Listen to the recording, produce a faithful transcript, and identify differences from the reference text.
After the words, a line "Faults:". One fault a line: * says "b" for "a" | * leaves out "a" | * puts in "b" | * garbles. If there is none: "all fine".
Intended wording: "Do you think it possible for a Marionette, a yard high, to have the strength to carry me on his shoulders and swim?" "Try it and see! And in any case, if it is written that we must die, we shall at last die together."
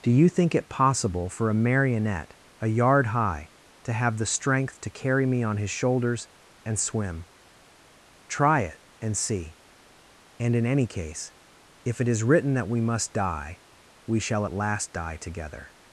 "Do you think it possible for a Marionette, a yard high, to have the strength to carry me on his shoulders and swim?" "Try it and see! And in any case, if it is written that we must die, we shall at last die together."
Faults:
all fine